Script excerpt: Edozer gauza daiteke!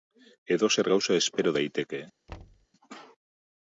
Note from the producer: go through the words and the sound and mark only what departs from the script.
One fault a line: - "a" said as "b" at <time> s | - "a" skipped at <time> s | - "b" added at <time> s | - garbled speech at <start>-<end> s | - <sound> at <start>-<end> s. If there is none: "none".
- "espero" added at 1.2 s
- thud at 2.3-2.7 s